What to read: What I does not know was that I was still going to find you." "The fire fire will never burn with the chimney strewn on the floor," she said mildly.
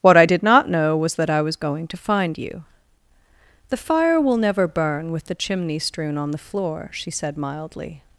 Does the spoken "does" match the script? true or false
false